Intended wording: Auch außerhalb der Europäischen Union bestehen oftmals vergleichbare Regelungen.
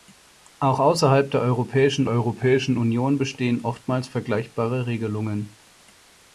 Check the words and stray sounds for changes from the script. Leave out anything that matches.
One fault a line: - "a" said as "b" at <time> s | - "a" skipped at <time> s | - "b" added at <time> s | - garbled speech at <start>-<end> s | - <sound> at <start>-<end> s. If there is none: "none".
- "Europäischen" added at 2.1 s